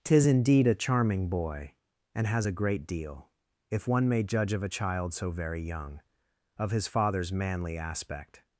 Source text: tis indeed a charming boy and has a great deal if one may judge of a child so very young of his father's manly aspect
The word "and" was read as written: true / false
true